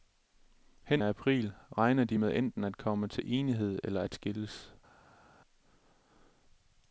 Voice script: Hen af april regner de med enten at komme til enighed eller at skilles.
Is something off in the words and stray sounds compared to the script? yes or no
no